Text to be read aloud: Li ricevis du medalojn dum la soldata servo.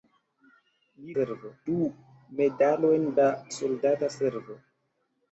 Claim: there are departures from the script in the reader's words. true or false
true